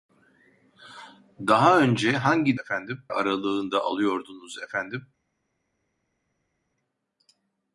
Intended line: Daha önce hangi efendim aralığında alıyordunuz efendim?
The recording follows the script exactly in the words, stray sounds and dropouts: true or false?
true